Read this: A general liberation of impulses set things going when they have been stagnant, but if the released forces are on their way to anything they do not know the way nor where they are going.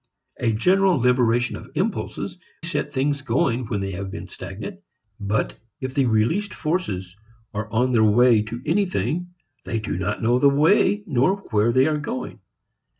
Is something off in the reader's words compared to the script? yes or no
no